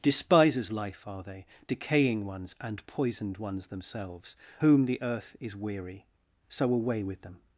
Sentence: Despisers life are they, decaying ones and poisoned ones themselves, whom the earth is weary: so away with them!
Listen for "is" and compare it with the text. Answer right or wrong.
right